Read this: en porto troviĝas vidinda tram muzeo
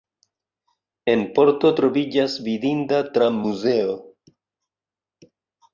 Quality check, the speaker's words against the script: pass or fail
pass